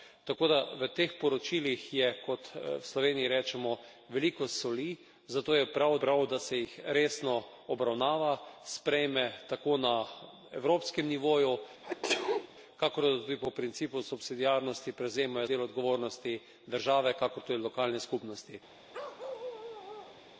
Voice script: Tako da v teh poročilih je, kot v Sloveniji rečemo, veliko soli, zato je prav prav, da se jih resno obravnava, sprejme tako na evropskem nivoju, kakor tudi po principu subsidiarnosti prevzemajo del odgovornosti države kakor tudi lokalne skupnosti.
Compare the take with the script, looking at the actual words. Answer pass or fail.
pass